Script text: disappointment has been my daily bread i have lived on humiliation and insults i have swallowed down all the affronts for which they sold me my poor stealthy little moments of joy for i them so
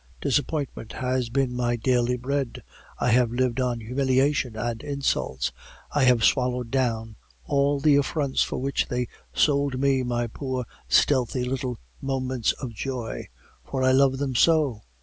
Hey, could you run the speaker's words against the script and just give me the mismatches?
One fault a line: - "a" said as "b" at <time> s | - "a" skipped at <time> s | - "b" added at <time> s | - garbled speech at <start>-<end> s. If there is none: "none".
- "love" added at 13.9 s